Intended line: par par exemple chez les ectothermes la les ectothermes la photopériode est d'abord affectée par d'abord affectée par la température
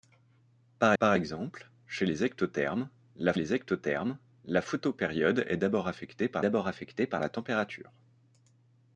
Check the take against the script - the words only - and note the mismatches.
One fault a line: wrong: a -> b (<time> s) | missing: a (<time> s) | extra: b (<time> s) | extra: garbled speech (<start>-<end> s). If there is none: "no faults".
no faults